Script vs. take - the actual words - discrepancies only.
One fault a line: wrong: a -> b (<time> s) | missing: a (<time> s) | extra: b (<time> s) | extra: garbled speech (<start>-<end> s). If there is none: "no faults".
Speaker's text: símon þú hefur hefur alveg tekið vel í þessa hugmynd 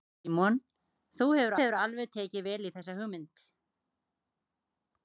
no faults